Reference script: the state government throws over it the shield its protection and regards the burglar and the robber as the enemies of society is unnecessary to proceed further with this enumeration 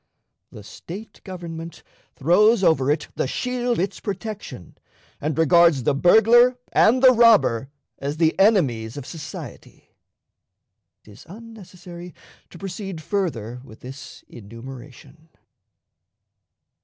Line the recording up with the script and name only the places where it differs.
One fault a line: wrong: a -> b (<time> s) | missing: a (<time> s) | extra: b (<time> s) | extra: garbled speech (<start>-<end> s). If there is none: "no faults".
no faults